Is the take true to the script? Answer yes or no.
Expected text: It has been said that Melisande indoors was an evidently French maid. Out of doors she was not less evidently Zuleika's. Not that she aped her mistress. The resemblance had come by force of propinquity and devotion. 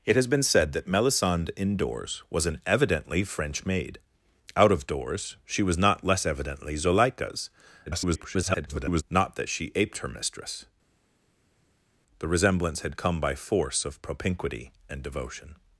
no